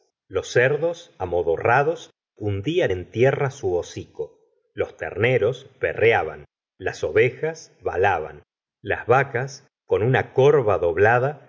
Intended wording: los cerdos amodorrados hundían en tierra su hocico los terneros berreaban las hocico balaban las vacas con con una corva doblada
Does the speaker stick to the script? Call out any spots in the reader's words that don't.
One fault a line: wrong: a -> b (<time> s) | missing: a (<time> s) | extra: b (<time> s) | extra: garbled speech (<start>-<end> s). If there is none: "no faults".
wrong: hocico -> ovejas (7.0 s)
missing: con (10.0 s)